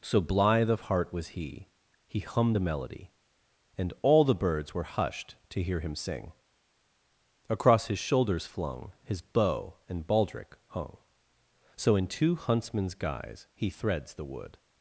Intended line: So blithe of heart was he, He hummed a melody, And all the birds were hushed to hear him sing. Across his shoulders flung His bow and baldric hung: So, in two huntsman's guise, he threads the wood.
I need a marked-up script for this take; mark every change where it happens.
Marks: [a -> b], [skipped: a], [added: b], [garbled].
So blithe of heart was he, He hummed a melody, And all the birds were hushed to hear him sing. Across his shoulders flung His bow and baldric hung: So, in two huntsman's guise, he threads the wood.